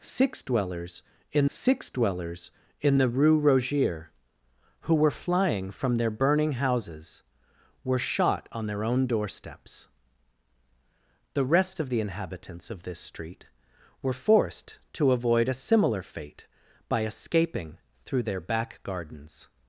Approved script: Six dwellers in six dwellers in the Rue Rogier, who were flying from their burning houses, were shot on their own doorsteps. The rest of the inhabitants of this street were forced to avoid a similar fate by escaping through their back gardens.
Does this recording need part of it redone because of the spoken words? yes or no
no